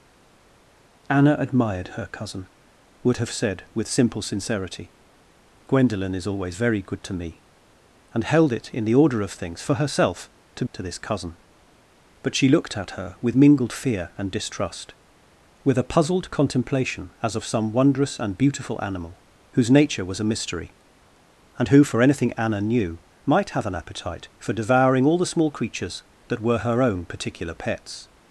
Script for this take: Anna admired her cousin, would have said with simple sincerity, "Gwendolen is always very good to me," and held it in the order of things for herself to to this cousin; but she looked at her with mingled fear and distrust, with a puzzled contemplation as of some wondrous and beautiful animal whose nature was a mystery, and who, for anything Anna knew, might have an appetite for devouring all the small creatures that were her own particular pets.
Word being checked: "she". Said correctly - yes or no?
yes